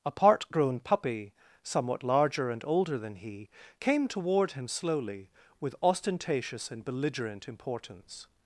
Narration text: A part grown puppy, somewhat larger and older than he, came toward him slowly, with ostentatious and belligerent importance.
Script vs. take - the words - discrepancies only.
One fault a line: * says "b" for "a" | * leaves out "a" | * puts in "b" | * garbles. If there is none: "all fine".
all fine